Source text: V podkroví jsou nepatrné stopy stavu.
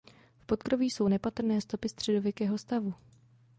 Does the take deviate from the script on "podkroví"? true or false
false